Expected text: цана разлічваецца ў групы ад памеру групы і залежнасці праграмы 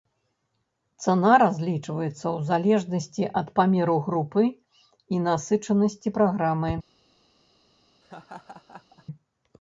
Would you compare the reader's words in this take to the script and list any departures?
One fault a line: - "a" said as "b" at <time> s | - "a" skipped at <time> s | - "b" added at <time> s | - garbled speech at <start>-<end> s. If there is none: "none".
- "групы" said as "залежнасці" at 2.5 s
- "залежнасці" said as "насычанасці" at 5.3 s